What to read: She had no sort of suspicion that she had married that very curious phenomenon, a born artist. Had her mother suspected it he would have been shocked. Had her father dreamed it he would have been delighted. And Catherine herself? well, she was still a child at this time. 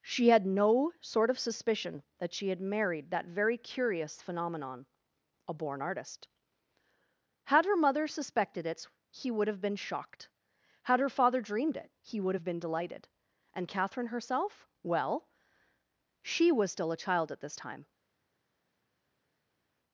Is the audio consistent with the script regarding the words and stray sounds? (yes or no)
yes